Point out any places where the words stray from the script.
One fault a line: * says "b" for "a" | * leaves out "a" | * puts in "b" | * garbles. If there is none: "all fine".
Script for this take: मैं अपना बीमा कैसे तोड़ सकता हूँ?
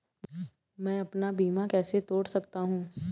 all fine